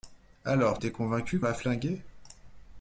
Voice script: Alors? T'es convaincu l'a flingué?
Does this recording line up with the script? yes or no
yes